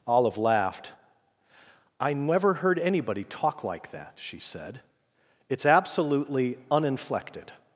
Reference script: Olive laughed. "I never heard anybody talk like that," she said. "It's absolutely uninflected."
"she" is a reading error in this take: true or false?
false